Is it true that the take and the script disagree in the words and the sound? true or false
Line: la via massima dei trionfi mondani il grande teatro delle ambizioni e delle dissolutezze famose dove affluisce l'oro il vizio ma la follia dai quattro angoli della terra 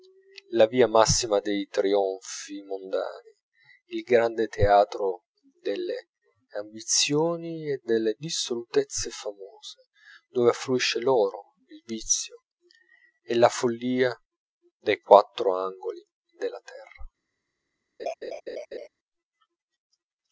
true